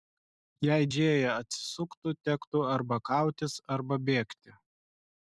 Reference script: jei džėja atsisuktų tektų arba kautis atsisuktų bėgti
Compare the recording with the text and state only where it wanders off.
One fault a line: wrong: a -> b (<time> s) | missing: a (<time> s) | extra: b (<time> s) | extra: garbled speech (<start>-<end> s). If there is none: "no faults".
wrong: atsisuktų -> arba (3.8 s)